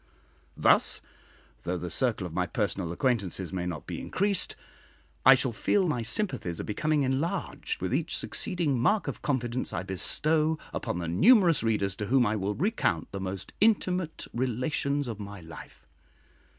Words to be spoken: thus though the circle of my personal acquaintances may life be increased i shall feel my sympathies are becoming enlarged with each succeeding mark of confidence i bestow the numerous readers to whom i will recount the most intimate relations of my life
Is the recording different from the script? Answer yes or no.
yes